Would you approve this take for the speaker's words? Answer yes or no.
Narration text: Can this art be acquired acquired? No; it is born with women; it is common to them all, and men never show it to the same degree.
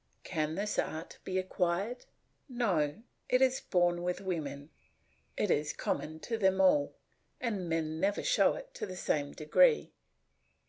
no